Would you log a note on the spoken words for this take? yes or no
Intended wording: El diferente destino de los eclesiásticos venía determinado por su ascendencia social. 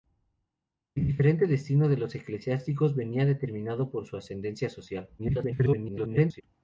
yes